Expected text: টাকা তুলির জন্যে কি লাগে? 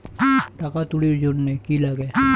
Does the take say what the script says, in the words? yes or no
yes